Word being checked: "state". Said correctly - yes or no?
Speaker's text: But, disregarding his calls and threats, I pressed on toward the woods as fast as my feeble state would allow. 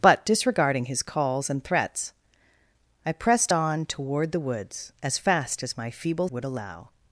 no